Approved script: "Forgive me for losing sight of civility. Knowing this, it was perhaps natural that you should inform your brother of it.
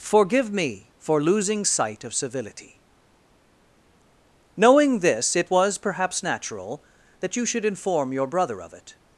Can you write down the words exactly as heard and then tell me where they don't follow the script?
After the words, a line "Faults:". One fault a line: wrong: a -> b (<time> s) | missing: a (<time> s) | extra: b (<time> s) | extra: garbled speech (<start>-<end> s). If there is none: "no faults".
"Forgive me for losing sight of civility. Knowing this, it was perhaps natural that you should inform your brother of it.
Faults:
no faults